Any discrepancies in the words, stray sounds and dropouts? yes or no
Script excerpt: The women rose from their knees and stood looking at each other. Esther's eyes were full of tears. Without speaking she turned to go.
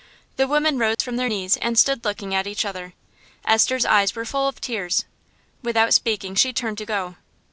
yes